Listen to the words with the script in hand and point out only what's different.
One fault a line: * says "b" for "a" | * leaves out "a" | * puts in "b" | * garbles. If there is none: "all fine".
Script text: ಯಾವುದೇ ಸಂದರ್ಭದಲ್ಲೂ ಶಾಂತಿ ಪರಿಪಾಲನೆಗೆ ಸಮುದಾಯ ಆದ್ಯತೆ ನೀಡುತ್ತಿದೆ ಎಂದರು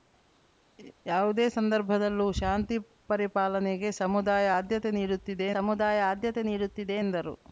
* puts in "ಸಮುದಾಯ ಆದ್ಯತೆ ನೀಡುತ್ತಿದೆ"